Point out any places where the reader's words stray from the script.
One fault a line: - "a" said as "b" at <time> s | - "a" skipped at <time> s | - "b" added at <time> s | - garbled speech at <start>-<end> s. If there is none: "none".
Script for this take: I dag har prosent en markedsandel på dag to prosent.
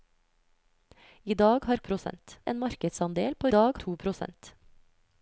none